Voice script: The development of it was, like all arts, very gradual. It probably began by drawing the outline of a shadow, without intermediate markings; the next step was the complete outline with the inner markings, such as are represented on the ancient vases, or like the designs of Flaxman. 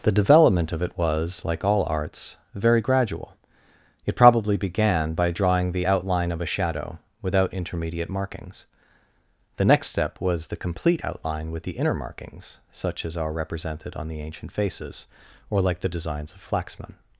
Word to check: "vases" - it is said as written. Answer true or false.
false